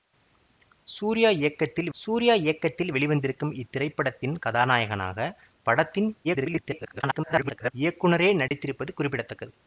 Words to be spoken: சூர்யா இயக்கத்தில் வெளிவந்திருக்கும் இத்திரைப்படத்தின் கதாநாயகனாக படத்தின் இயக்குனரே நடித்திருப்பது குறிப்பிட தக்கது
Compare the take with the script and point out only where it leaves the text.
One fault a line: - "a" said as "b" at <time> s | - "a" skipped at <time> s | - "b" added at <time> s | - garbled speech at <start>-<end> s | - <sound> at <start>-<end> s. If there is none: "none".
- "சூர்யா இயக்கத்தில்" added at 1.9 s
- garbled speech at 6.2-7.7 s
- dropout at 8.5-8.5 s